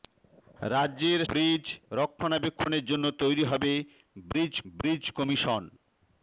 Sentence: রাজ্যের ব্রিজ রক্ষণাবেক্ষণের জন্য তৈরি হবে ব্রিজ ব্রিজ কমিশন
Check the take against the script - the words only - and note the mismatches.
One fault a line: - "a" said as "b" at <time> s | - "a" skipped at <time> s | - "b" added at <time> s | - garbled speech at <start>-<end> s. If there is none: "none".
none